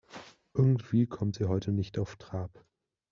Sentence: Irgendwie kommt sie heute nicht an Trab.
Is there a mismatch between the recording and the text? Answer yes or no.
yes